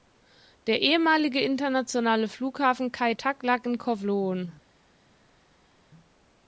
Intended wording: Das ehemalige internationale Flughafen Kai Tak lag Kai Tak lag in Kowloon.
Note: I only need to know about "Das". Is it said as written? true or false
false